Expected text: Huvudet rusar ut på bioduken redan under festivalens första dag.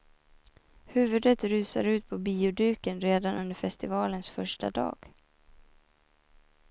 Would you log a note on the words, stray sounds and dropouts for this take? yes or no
no